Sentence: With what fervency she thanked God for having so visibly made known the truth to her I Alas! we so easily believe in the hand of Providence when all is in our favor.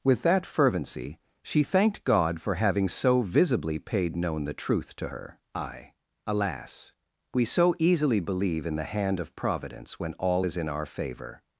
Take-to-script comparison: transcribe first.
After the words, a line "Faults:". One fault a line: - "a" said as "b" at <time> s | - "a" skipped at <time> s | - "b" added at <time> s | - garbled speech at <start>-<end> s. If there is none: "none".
With that fervency she thanked God for having so visibly paid known the truth to her I Alas! we so easily believe in the hand of Providence when all is in our favor.
Faults:
- "what" said as "that" at 0.2 s
- "made" said as "paid" at 3.8 s